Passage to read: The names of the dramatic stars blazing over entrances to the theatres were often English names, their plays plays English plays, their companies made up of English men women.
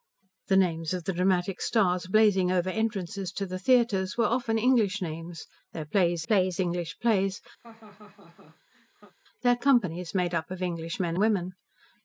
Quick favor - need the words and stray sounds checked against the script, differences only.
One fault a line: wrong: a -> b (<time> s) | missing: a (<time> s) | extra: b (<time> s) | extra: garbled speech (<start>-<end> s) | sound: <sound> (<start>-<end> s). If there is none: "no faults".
sound: laugh (7.6-9.1 s)